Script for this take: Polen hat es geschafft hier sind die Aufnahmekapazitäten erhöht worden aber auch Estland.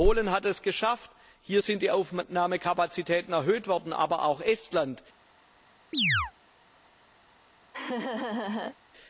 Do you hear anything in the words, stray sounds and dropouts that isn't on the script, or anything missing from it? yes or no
yes